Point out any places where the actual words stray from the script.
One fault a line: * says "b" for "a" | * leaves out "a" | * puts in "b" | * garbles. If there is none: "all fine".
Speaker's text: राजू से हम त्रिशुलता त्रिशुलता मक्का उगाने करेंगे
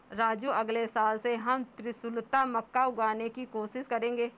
* puts in "अगले साल"
* leaves out "त्रिशुलता"
* puts in "की कोशिश"